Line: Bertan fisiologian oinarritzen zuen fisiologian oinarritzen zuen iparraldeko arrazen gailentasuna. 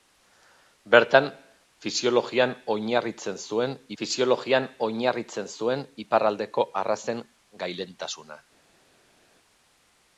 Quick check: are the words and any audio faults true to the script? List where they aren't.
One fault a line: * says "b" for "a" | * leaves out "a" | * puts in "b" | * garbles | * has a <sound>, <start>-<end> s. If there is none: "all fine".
all fine